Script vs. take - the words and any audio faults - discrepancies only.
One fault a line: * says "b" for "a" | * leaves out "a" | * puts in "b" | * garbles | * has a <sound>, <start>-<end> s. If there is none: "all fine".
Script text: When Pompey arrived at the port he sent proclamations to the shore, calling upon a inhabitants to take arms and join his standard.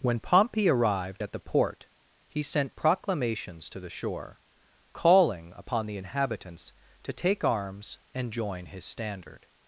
* says "the" for "a"